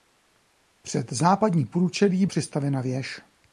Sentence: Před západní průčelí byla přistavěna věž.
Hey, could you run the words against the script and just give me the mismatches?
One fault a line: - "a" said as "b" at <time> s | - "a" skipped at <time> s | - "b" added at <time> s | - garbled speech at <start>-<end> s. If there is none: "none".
- "byla" skipped at 2.2 s